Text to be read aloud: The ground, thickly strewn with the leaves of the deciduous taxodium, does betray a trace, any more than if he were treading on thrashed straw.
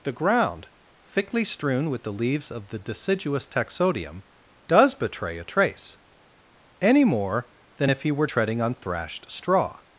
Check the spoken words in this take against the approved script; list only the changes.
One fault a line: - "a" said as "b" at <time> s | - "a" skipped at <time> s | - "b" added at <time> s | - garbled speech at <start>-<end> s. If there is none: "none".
none